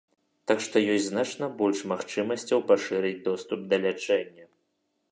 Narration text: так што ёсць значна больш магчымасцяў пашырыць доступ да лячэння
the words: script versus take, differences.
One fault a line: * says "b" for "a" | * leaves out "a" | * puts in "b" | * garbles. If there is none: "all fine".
all fine